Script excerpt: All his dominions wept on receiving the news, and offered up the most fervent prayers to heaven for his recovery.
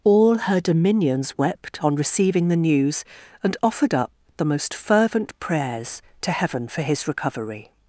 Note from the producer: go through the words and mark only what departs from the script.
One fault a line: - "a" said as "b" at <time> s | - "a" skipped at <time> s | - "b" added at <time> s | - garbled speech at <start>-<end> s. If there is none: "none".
- "his" said as "her" at 0.4 s